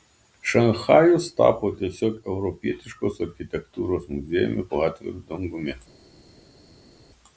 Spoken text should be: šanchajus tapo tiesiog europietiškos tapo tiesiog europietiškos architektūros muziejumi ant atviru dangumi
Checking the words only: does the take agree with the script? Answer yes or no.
no